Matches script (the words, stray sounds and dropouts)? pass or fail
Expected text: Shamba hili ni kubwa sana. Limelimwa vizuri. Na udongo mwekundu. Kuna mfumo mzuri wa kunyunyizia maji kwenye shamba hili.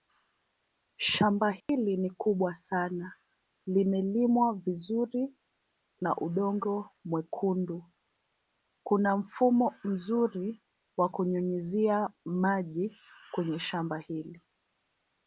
fail